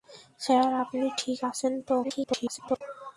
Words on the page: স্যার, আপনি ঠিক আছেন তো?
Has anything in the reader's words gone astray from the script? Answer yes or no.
yes